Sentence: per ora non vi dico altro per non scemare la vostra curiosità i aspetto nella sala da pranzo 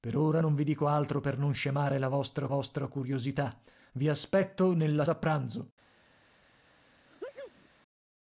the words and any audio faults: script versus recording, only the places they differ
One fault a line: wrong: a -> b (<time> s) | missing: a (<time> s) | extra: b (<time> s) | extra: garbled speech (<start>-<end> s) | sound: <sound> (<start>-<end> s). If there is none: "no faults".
extra: vostra (2.5 s)
missing: sala (5.0 s)
sound: sneeze (7.1-7.7 s)